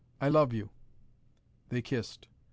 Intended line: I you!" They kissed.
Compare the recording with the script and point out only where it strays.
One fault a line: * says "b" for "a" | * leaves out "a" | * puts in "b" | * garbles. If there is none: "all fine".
* puts in "love"